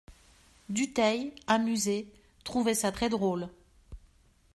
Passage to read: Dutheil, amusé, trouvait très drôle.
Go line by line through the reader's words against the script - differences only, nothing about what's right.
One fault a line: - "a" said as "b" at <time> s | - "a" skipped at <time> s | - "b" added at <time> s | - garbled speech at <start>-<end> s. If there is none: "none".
- "ça" added at 2.7 s